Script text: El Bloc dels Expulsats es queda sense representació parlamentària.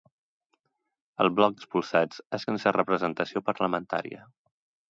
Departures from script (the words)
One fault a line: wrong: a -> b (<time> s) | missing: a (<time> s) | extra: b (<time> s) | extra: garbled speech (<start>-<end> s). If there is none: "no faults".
missing: dels (1.6 s)
missing: queda (2.5 s)